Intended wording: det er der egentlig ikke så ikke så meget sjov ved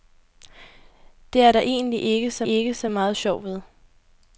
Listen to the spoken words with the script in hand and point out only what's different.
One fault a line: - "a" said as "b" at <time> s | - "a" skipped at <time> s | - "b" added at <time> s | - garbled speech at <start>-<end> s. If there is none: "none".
none